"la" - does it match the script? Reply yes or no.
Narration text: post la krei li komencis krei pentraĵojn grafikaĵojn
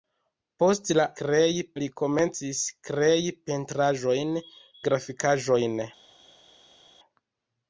yes